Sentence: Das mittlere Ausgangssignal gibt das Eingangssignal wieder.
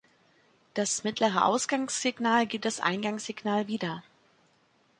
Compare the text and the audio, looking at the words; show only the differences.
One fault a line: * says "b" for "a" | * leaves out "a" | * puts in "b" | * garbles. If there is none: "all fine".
all fine